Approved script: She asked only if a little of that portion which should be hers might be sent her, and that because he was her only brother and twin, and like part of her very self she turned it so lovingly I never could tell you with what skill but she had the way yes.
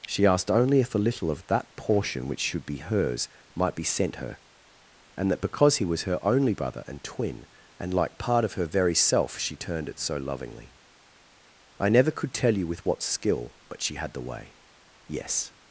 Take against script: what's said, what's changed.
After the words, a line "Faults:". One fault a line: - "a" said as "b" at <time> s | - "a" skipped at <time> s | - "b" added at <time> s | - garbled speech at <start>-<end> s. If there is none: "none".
She asked only if a little of that portion which should be hers might be sent her, and that because he was her only brother and twin, and like part of her very self she turned it so lovingly I never could tell you with what skill but she had the way yes.
Faults:
none